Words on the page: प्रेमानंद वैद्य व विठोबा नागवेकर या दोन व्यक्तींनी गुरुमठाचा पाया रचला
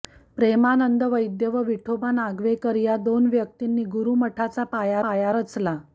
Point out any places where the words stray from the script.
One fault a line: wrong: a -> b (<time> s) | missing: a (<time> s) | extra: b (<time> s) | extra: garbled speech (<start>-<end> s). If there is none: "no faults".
extra: पाया (5.0 s)